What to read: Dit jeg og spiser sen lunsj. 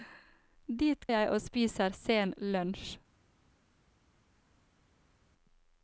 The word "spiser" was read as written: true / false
true